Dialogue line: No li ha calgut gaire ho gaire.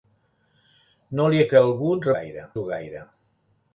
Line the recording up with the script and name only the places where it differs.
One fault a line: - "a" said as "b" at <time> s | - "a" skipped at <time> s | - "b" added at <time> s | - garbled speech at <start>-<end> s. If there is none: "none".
none